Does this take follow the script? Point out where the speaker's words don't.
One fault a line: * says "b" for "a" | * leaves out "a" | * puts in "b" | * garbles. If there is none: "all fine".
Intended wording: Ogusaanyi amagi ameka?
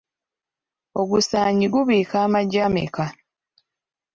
* puts in "gubiika"